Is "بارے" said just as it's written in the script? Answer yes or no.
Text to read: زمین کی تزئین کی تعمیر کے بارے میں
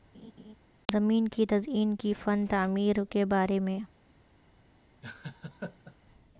yes